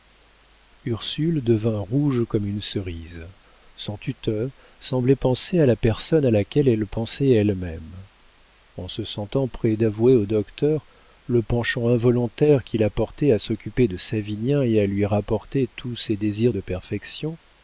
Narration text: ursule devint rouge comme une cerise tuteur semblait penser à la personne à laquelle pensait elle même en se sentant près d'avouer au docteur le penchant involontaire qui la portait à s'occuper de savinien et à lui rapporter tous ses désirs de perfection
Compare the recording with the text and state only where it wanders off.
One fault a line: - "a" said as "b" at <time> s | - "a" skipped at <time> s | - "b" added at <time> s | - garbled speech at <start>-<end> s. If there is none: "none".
- "son" added at 3.8 s
- "elle" added at 6.7 s